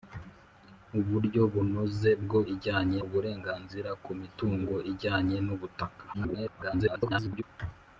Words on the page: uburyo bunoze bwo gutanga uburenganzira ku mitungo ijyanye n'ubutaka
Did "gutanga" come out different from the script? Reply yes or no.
yes